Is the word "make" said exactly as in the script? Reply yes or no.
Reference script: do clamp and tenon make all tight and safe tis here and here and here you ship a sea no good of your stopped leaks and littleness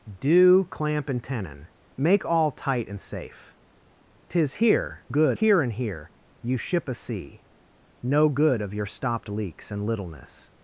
yes